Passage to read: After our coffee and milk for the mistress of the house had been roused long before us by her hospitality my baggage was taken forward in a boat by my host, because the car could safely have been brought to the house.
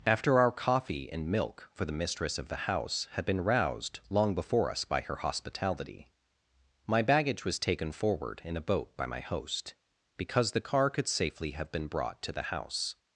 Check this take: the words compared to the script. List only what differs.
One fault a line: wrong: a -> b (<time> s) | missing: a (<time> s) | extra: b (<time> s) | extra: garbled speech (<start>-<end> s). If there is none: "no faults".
no faults